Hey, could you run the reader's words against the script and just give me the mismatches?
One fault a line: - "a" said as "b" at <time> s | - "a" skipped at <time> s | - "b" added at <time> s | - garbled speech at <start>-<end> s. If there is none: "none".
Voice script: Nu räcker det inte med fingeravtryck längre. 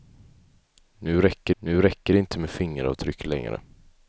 - "nu räcker" added at 1.6 s